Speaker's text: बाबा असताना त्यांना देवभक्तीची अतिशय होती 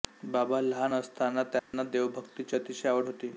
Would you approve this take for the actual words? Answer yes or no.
no